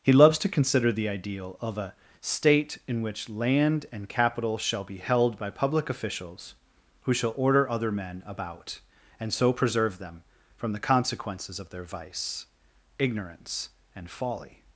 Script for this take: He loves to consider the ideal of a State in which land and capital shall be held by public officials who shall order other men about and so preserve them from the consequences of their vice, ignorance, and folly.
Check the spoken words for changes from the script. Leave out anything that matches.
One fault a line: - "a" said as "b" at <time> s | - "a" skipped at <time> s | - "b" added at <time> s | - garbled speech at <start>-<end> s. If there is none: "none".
none